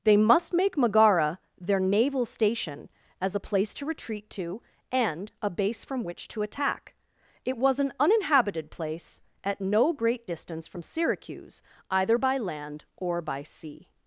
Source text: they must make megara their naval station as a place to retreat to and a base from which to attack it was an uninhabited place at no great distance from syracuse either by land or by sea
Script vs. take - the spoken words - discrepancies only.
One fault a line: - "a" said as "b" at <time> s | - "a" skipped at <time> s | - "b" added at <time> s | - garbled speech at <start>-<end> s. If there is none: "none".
none